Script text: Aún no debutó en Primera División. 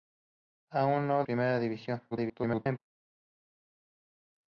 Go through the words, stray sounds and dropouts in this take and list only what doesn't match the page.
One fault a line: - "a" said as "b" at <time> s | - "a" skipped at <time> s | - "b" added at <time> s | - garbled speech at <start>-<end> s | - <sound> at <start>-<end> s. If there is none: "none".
- "debutó en" skipped at 1.2 s
- garbled speech at 2.1-2.8 s